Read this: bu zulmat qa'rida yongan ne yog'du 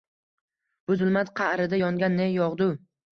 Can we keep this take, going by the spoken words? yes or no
yes